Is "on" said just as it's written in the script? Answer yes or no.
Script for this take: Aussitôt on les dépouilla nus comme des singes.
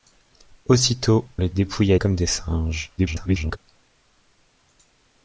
no